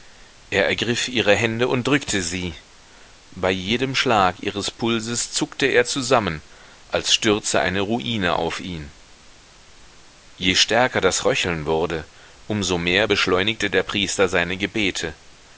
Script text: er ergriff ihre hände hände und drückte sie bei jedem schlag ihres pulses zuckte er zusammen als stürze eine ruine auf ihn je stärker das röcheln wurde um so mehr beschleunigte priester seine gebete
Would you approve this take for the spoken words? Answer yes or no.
no